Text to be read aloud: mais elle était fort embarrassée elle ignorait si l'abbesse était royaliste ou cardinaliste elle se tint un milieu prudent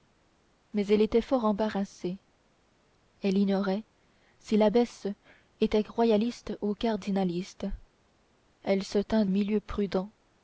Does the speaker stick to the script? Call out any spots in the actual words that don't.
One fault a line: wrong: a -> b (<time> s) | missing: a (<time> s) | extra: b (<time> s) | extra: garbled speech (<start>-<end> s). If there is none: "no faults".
no faults